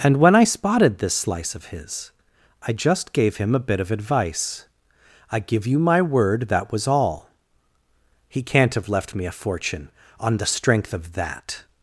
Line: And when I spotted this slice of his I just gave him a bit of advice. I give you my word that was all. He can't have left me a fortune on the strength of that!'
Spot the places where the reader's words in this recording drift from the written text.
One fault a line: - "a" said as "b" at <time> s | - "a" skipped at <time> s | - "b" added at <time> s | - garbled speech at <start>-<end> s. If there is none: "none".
none